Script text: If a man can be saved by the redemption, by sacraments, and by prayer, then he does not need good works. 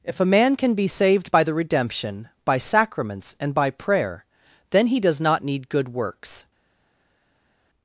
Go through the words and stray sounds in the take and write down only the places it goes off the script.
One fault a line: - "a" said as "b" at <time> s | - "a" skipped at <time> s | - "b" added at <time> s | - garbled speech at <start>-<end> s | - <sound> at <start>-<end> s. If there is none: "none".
none